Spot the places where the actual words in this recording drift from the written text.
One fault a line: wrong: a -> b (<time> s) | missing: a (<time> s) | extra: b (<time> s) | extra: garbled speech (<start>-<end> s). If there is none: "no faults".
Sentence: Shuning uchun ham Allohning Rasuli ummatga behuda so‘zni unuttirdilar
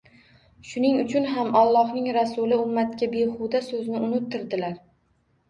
no faults